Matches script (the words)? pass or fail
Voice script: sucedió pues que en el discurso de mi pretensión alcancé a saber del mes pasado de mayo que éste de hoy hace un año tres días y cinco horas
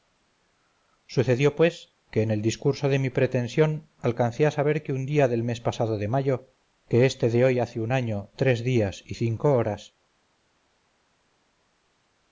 fail